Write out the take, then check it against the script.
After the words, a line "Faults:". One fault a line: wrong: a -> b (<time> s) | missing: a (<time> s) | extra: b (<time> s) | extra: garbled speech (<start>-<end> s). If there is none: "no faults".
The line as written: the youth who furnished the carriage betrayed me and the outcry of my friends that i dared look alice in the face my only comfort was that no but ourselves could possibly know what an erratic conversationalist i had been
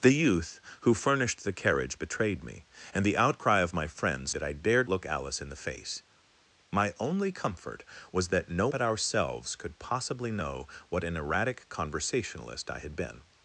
the youth who furnished the carriage betrayed me and the outcry of my friends that i dared look alice in the face my only comfort was that no but ourselves could possibly know what an erratic conversationalist i had been
Faults:
no faults